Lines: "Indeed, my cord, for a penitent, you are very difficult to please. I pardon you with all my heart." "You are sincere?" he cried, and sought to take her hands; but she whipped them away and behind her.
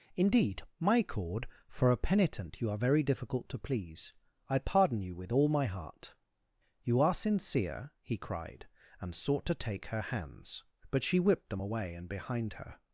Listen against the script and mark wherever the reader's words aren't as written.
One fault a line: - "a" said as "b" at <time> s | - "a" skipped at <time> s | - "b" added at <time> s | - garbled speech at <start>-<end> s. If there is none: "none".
none